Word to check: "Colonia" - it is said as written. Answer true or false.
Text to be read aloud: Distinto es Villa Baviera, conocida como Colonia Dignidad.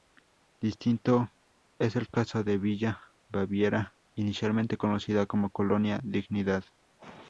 true